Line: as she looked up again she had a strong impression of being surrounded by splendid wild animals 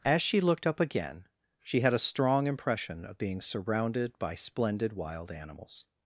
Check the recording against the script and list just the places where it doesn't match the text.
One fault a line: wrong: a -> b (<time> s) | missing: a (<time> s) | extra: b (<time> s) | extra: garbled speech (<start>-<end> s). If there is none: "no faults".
no faults